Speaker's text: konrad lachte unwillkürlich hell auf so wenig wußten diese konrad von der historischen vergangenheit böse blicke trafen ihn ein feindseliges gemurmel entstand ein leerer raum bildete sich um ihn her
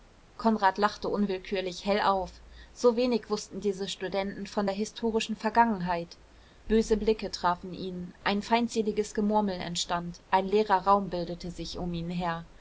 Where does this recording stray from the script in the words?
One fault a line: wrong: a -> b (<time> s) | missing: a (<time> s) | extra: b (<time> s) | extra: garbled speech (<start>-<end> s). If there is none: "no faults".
wrong: konrad -> studenten (3.9 s)